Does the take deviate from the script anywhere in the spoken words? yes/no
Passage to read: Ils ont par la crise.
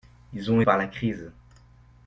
no